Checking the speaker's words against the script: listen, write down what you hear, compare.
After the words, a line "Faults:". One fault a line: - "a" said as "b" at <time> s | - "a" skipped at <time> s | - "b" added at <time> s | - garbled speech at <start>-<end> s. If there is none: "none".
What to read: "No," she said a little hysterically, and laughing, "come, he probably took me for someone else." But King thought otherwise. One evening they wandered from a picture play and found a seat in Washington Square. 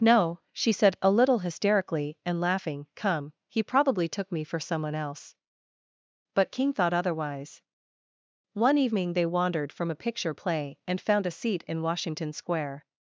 "No," she said a little hysterically, and laughing, "come, he probably took me for someone else." But King thought otherwise. One evening they wandered from a picture play and found a seat in Washington Square.
Faults:
none